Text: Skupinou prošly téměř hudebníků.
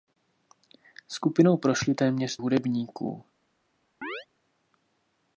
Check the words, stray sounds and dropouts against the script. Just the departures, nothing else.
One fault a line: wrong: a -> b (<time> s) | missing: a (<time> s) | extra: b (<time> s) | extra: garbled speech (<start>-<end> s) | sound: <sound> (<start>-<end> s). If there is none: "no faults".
sound: chirp (4.0-4.3 s)